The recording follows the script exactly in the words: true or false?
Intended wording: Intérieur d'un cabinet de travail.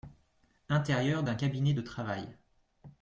true